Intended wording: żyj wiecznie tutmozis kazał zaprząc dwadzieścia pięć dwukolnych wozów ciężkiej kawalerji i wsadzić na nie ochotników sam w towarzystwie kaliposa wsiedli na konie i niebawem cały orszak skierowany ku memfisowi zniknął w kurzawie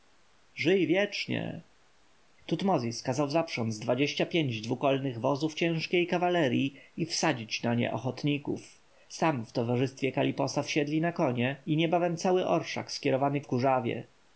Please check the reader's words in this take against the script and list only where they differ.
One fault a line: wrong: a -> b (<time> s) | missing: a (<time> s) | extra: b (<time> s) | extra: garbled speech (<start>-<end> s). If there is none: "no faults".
missing: ku memfisowi zniknął (13.4 s)